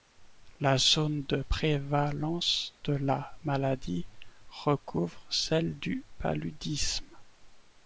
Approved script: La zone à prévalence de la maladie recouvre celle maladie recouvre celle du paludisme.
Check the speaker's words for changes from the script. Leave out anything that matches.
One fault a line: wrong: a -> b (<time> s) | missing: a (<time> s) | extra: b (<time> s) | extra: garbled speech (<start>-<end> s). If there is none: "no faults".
wrong: à -> de (1.3 s)
missing: maladie recouvre celle (5.8 s)